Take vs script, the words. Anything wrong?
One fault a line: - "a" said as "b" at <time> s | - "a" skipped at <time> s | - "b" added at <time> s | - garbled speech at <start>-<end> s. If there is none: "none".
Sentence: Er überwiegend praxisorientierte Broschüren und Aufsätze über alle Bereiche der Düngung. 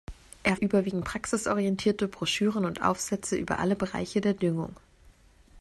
none